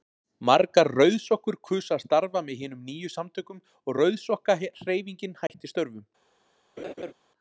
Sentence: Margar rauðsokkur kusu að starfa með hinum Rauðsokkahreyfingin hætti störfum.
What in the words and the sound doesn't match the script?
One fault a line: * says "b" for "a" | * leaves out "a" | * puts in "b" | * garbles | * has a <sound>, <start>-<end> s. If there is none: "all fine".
* puts in "nýju samtökum og"
* has a dropout, 5.5-5.5 s
* has a laugh, 6.8-7.1 s